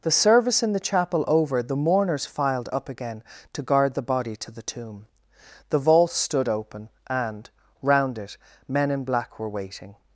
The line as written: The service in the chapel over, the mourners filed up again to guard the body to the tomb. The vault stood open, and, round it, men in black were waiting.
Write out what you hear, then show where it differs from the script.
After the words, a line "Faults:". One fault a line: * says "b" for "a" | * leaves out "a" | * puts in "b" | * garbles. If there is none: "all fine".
The service in the chapel over, the mourners filed up again to guard the body to the tomb. The vault stood open, and, round it, men in black were waiting.
Faults:
all fine